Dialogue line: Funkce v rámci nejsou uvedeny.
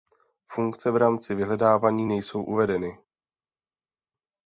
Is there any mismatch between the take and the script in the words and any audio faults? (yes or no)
yes